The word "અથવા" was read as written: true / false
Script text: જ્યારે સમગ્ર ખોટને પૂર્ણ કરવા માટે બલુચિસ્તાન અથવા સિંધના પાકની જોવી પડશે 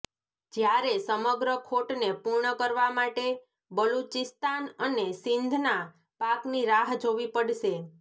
false